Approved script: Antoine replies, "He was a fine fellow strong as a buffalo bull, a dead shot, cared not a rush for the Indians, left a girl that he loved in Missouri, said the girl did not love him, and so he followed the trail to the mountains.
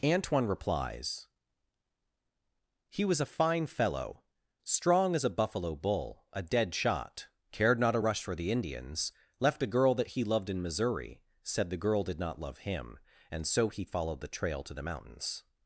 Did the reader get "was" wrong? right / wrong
right